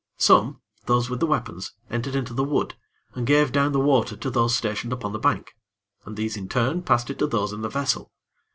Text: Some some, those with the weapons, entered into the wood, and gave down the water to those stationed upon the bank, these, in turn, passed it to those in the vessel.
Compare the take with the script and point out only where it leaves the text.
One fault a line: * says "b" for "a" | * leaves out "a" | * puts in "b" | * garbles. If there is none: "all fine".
* leaves out "some"
* puts in "and"